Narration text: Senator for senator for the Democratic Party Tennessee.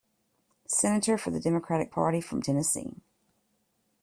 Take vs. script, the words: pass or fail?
fail